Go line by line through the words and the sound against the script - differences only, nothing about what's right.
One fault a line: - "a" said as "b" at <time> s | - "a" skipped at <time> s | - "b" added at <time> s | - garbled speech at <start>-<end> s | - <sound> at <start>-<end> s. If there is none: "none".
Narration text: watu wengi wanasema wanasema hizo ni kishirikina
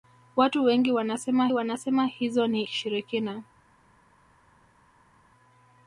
none